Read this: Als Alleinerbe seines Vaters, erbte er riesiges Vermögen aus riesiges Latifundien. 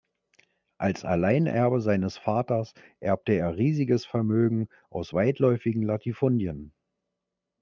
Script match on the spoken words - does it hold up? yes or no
no